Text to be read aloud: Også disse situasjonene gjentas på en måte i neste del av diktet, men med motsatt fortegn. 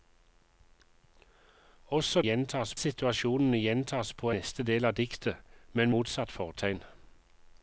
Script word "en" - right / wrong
wrong